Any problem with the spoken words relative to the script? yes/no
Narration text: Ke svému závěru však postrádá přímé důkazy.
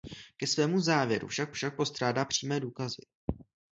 yes